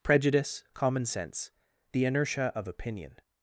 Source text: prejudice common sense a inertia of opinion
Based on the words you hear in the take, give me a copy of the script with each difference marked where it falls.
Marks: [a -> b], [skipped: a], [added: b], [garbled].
prejudice common sense [a -> the] inertia of opinion